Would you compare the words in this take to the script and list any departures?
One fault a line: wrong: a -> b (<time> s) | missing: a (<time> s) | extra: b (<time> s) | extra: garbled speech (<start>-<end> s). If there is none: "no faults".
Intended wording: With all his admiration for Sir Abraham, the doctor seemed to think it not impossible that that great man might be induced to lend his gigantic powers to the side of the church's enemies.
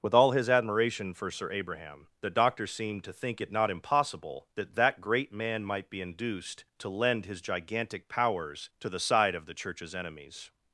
no faults